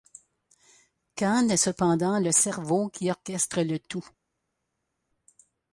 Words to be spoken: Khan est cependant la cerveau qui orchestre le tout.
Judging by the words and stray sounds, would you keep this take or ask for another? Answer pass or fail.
fail